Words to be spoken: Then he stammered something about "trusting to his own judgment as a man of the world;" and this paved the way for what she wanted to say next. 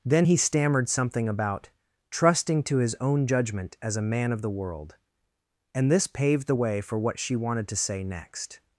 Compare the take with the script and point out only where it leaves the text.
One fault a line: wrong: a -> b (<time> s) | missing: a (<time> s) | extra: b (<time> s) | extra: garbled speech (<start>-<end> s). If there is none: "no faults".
no faults